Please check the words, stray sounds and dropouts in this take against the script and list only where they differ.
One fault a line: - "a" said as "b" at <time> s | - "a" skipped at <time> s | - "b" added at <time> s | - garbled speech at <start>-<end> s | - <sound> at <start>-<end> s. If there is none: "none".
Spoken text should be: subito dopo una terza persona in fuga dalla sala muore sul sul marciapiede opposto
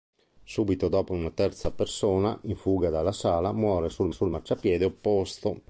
none